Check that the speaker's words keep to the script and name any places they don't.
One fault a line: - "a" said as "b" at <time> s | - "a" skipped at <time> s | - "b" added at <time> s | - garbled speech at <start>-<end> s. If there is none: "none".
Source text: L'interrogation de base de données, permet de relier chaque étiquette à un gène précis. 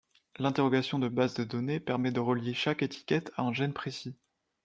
none